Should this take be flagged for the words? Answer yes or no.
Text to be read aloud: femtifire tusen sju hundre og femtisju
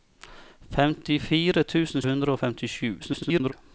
yes